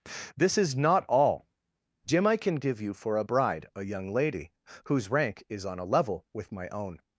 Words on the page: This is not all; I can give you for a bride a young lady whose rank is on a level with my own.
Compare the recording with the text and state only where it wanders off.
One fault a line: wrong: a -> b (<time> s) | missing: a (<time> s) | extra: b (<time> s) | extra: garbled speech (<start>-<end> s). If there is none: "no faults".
extra: jim (2.0 s)